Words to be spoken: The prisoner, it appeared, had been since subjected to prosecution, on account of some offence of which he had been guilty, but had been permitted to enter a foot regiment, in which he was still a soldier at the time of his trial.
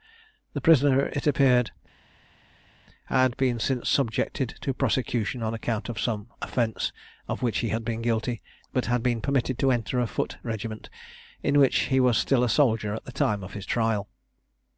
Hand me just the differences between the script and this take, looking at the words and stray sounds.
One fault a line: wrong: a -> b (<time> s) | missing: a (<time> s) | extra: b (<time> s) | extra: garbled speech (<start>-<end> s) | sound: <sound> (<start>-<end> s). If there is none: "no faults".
no faults